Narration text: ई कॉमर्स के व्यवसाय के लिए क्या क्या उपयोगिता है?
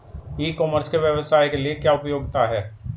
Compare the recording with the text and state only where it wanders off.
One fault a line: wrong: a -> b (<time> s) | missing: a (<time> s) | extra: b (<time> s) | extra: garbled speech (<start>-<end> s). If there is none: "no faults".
missing: क्या (1.9 s)